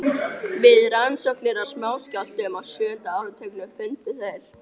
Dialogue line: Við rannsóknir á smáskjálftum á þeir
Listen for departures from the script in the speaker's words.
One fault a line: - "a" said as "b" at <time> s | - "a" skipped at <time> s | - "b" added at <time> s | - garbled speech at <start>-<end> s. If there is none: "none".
- "sjöunda áratugnum fundu" added at 2.7 s